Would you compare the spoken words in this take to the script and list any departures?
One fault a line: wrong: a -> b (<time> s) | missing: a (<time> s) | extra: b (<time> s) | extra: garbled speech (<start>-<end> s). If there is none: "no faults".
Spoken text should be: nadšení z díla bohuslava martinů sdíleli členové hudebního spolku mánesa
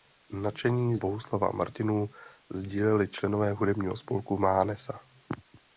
missing: díla (1.0 s)